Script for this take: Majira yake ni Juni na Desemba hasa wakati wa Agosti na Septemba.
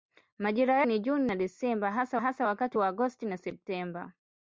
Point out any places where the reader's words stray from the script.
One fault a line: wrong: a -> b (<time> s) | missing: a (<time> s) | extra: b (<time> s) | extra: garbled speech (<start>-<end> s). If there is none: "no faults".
missing: yake (0.8 s)
extra: hasa (2.2 s)